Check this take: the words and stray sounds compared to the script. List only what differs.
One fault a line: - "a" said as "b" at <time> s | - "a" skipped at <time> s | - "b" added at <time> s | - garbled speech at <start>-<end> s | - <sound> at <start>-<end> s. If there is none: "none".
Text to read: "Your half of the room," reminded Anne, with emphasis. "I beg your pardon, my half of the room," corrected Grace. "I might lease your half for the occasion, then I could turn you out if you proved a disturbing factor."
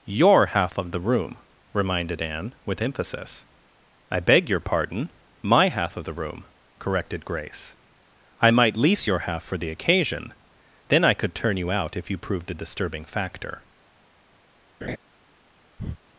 - laugh at 14.8-15.0 s
- breath at 15.8-16.0 s